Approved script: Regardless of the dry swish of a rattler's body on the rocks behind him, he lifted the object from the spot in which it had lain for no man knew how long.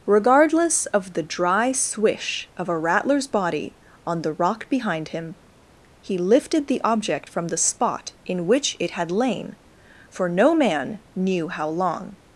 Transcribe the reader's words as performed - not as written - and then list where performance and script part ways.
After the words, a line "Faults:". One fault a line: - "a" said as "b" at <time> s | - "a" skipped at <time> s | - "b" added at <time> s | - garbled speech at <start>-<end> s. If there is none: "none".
Regardless of the dry swish of a rattler's body on the rock behind him, he lifted the object from the spot in which it had lain for no man knew how long.
Faults:
- "rocks" said as "rock" at 4.3 s